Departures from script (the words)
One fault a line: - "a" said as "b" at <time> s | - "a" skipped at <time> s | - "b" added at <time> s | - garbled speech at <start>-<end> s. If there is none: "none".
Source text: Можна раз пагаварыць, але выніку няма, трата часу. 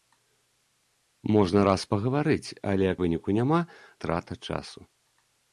none